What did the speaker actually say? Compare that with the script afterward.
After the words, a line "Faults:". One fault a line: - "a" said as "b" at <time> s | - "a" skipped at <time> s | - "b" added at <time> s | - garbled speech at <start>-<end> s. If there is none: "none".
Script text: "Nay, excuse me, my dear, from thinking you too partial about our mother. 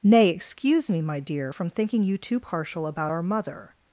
"Nay, excuse me, my dear, from thinking you too partial about our mother.
Faults:
none